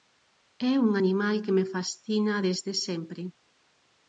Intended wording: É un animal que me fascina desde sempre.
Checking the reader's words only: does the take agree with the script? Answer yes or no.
yes